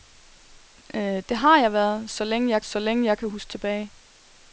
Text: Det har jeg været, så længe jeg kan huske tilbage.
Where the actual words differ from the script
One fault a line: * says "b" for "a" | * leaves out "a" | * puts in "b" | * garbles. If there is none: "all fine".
* puts in "så længe jeg"